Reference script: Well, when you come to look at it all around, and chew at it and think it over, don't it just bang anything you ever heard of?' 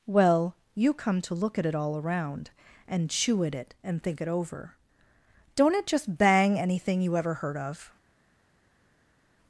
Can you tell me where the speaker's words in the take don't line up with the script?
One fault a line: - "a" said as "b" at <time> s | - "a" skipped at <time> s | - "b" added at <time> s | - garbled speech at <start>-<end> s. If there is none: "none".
- "when" skipped at 0.6 s